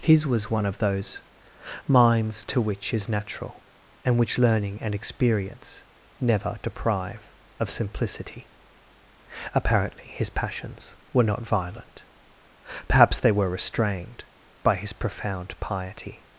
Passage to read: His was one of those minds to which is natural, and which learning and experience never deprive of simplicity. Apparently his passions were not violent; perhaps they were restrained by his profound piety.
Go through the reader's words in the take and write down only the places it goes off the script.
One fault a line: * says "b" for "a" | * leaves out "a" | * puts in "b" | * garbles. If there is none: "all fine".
all fine